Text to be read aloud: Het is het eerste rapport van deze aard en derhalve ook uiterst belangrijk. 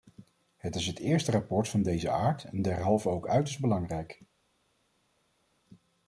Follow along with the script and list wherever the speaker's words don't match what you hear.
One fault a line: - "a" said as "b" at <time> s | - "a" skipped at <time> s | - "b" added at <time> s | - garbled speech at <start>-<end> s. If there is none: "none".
none